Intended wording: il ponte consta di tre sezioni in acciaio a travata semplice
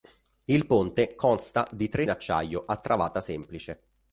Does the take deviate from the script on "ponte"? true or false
false